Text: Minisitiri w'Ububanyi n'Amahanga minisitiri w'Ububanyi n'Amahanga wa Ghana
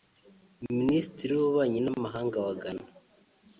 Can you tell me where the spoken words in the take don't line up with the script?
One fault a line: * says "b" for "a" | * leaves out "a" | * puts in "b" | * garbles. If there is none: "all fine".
* leaves out "minisitiri w'Ububanyi n'Amahanga"